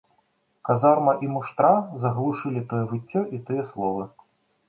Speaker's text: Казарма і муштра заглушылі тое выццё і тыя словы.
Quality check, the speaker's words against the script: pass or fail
pass